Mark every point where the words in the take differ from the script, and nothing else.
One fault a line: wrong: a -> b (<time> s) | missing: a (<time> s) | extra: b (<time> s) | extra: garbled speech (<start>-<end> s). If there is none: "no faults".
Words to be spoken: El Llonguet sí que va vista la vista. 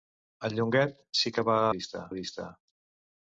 no faults